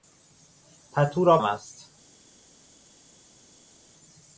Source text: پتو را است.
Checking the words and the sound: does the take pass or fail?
pass